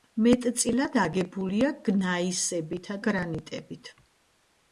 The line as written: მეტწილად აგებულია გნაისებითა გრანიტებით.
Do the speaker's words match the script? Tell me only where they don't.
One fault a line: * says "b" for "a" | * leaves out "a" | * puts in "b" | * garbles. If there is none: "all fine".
all fine